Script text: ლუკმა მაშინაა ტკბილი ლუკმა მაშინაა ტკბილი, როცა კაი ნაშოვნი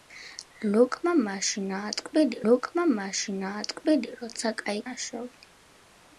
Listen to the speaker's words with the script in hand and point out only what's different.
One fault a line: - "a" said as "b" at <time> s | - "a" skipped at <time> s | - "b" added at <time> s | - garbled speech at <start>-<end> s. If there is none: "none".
none